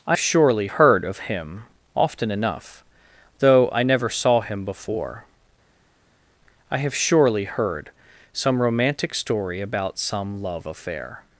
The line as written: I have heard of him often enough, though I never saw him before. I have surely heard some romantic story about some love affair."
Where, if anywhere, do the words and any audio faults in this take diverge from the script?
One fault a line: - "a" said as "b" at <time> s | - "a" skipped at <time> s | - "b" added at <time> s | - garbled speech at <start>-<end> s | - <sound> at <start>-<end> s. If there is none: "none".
- "have" said as "surely" at 0.2 s